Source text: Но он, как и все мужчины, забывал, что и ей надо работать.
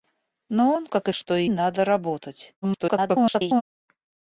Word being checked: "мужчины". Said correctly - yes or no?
no